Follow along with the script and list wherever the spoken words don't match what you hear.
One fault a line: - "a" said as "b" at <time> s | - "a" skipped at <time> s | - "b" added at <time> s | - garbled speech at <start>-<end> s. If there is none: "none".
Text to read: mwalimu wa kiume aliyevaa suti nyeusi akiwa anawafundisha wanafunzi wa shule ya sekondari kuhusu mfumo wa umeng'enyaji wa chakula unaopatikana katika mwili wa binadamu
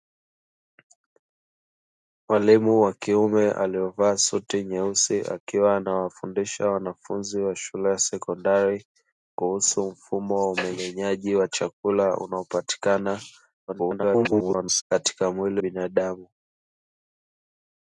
- garbled speech at 13.7-14.8 s
- "wa" skipped at 15.6 s